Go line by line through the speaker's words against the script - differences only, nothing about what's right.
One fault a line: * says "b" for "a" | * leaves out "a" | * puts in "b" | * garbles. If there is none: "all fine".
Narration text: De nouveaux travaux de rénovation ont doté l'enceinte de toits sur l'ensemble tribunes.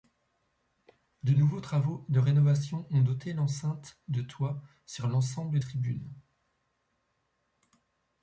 all fine